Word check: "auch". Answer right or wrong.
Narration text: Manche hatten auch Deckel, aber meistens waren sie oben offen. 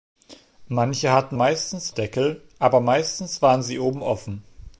wrong